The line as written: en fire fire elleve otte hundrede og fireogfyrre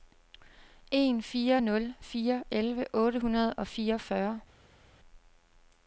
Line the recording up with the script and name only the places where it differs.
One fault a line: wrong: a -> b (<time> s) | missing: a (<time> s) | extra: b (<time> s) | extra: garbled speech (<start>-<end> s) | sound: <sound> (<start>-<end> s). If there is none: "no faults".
extra: nul (1.6 s)